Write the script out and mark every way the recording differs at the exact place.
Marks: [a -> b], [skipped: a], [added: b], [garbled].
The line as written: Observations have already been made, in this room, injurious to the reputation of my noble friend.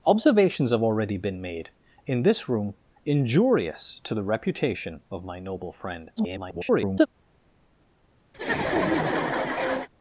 Observations have already been made, in this room, injurious to the reputation of my noble friend. [garbled]